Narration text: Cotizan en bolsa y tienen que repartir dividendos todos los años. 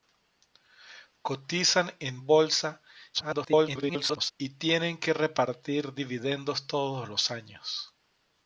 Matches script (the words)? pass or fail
fail